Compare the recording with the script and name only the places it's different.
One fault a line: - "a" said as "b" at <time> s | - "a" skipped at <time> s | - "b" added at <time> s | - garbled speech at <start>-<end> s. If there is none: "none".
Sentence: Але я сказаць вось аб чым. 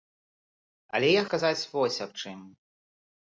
none